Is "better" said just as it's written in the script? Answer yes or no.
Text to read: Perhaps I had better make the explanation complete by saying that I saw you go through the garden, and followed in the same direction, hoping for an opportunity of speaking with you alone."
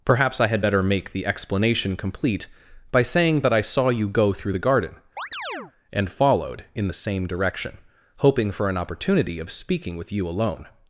yes